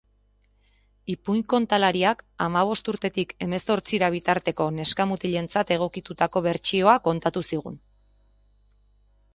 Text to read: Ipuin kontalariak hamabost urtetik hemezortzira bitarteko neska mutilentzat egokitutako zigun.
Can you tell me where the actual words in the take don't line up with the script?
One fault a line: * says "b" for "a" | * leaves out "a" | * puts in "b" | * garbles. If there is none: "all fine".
* puts in "bertsioa kontatu"